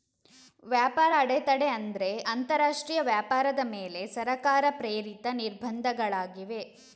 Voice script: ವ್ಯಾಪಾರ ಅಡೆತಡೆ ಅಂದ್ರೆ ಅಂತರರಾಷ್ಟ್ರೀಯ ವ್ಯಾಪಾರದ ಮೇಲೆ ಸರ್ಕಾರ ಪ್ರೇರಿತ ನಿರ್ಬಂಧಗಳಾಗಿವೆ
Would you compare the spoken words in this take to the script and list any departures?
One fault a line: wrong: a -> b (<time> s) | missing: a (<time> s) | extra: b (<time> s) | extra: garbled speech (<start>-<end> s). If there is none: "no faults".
no faults